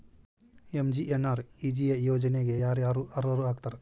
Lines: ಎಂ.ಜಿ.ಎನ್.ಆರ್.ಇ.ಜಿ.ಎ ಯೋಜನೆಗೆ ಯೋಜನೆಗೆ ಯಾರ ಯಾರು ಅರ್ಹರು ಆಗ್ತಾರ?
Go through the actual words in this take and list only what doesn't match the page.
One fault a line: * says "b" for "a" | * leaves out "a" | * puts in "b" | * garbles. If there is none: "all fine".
* leaves out "ಯೋಜನೆಗೆ"